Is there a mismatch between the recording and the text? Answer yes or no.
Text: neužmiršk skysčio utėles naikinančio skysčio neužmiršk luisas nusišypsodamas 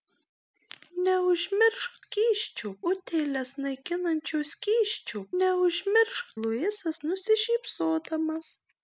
no